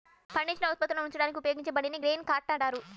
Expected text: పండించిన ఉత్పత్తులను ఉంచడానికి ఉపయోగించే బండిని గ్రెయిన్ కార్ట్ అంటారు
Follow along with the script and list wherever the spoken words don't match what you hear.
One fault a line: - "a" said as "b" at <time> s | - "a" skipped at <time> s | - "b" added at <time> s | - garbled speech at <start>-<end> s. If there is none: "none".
none